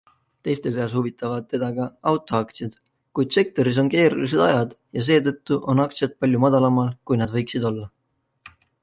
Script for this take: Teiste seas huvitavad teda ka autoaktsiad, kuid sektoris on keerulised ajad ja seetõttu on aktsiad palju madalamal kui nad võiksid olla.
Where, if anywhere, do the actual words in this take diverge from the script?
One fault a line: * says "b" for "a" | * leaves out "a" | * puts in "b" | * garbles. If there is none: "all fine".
all fine